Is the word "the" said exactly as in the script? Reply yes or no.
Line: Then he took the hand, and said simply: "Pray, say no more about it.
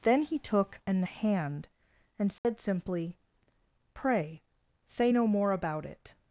no